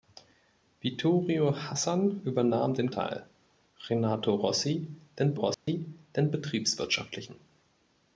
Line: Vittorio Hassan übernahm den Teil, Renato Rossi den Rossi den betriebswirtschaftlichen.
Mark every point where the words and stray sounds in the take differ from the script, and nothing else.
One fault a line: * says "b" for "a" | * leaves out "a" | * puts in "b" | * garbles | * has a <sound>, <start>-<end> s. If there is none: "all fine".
* has a dropout, 5.5-5.7 s